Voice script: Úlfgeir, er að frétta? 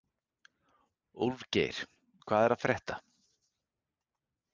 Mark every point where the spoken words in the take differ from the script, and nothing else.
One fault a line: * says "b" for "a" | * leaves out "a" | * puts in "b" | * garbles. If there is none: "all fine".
* puts in "hvað"